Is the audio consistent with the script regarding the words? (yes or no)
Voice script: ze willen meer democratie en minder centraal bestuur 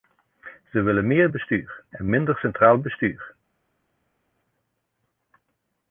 no